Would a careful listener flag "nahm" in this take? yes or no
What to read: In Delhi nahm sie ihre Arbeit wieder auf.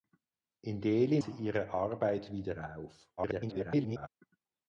yes